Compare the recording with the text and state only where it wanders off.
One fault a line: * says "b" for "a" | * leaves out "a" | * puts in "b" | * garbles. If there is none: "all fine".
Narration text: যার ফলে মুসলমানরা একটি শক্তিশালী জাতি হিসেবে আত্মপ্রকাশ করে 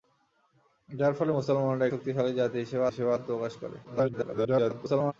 * leaves out "একটি"
* puts in "হিসেবে"
* garbles